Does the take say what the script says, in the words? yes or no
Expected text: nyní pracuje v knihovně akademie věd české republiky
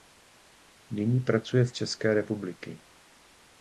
no